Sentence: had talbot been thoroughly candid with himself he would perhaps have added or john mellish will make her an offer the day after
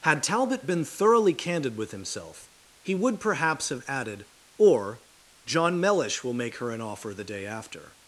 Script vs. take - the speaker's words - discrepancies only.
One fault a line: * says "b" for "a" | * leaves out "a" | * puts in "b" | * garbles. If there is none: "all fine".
all fine